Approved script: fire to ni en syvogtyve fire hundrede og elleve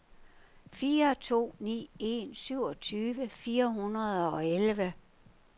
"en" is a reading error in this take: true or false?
false